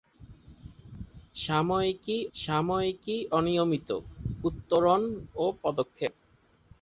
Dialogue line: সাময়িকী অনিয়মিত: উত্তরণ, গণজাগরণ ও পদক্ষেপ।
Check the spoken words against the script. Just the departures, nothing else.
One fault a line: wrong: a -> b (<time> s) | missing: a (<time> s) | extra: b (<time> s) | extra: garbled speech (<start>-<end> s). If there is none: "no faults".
extra: সাময়িকী (2.3 s)
missing: গণজাগরণ (5.0 s)